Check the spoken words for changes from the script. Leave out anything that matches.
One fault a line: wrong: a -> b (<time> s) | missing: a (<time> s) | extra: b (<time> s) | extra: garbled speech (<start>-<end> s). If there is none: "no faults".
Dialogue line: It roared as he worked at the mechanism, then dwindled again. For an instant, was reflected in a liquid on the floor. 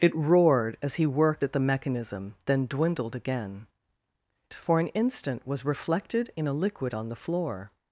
no faults